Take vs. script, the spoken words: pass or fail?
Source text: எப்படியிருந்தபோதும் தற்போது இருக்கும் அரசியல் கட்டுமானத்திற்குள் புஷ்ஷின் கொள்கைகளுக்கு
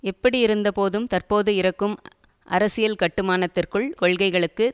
fail